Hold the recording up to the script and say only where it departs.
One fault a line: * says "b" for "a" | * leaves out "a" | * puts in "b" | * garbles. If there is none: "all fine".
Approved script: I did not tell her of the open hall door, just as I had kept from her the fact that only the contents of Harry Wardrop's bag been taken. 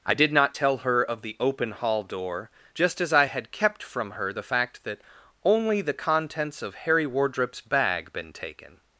all fine